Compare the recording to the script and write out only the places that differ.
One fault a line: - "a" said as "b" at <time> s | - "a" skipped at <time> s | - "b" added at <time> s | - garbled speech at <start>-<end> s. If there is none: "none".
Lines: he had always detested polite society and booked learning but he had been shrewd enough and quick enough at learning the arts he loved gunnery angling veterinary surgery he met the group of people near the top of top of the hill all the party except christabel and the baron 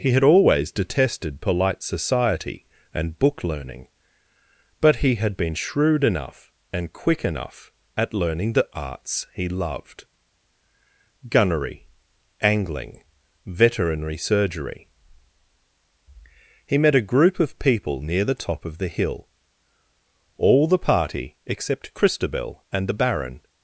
- "booked" said as "book" at 3.2 s
- "the" said as "a" at 17.0 s
- "top of" skipped at 18.8 s